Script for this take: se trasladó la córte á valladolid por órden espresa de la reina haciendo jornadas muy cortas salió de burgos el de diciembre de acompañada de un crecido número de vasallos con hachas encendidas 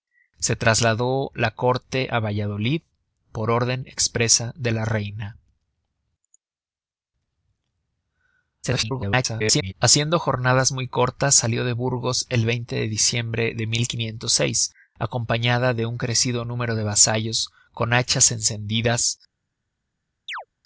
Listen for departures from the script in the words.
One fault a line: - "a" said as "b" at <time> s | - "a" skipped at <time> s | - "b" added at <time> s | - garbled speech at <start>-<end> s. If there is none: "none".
- garbled speech at 8.6-9.7 s